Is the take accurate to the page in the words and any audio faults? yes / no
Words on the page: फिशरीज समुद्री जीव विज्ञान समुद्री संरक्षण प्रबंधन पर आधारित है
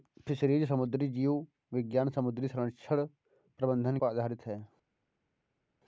yes